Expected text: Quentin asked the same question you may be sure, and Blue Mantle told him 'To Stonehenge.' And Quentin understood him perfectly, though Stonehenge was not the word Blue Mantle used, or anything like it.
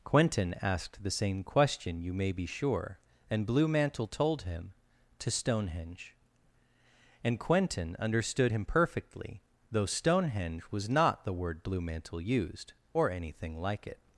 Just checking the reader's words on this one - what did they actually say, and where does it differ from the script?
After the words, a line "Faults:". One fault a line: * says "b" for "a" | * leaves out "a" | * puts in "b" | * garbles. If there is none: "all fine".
Quentin asked the same question you may be sure, and Blue Mantle told him 'To Stonehenge.' And Quentin understood him perfectly, though Stonehenge was not the word Blue Mantle used, or anything like it.
Faults:
all fine